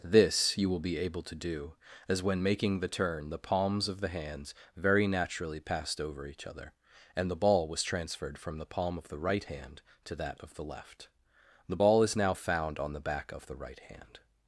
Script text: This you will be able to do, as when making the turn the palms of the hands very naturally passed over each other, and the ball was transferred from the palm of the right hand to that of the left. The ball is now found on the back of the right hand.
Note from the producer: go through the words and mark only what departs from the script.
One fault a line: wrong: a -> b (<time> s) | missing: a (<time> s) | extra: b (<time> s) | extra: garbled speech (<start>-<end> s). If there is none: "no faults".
no faults